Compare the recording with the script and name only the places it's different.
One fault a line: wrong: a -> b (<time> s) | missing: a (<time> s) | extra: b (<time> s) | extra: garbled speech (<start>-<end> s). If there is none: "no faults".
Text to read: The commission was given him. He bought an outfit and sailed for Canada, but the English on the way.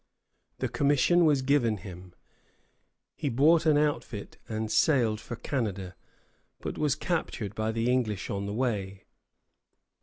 extra: was captured by (6.8 s)